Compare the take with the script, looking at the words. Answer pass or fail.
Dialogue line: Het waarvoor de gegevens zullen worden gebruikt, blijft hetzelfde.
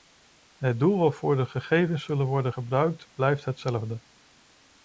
fail